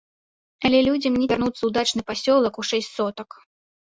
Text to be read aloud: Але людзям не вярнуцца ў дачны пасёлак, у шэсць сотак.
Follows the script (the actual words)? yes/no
yes